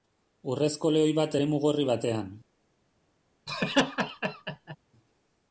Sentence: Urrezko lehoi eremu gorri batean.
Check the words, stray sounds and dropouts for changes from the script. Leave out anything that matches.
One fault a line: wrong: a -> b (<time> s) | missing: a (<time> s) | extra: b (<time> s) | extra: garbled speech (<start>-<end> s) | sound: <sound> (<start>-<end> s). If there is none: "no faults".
extra: bat (1.2 s)
sound: laugh (3.5-4.8 s)